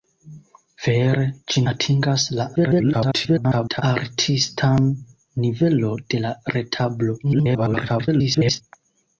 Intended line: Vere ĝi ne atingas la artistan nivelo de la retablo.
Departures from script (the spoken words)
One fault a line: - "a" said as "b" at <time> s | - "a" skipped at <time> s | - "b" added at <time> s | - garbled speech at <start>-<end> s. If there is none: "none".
- "ne" skipped at 1.6 s
- garbled speech at 2.6-3.8 s
- garbled speech at 7.2-8.6 s